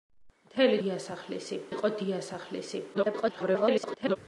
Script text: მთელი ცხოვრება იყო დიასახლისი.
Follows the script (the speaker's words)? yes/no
no